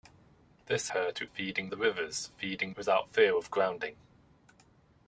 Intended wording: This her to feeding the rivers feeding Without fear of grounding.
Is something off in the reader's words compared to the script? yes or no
no